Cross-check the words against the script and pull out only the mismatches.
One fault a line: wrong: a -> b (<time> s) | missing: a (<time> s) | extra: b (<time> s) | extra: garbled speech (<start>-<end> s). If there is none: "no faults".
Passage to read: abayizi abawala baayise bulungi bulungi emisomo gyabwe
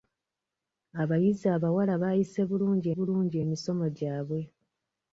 no faults